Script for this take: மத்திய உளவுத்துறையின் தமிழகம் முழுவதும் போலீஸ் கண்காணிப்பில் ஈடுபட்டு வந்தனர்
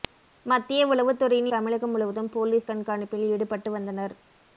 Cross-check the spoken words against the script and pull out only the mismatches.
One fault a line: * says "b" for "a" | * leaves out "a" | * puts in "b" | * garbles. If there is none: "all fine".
all fine